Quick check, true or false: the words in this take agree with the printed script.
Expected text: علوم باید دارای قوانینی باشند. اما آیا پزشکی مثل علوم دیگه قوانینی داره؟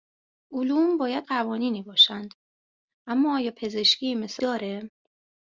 false